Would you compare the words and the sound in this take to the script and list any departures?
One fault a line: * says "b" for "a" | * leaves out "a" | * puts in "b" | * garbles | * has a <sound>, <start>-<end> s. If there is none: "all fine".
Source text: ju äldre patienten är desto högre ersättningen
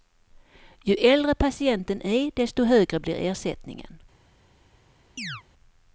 * puts in "blir"
* has a chirp, 5.2-5.4 s